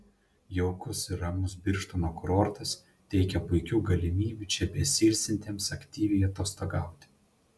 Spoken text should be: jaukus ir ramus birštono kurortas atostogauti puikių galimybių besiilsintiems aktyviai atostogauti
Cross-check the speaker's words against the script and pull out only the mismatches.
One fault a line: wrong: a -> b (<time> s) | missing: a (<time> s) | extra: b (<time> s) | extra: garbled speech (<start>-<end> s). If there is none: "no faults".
wrong: atostogauti -> teikia (3.1 s)
extra: čia (4.5 s)